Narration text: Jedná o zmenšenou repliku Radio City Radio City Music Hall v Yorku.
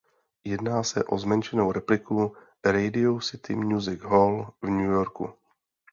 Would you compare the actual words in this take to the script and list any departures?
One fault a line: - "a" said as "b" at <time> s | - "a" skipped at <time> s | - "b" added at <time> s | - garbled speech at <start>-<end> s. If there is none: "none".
- "se" added at 0.8 s
- "Radio City" skipped at 3.5 s
- "New" added at 4.7 s